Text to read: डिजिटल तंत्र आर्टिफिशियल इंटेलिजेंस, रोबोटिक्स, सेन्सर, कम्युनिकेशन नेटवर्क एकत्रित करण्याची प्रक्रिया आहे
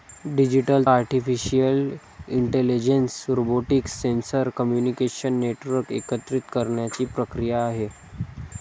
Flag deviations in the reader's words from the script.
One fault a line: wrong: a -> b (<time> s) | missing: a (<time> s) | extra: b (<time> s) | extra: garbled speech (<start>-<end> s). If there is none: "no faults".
missing: तंत्र (0.9 s)